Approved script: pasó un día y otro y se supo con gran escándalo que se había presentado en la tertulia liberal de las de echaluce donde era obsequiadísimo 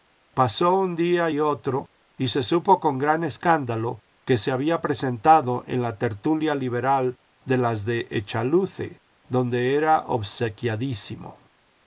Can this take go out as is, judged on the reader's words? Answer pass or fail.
pass